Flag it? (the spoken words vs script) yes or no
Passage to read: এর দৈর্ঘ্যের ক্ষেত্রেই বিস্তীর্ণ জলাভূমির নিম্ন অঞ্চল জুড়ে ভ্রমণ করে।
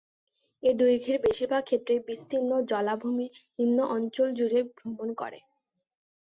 yes